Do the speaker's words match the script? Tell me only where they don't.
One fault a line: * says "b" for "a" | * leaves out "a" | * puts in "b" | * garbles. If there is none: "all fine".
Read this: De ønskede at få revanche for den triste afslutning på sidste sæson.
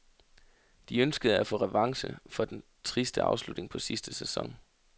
all fine